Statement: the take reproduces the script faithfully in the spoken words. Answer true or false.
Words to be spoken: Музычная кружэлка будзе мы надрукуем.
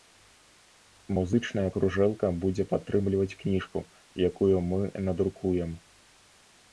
false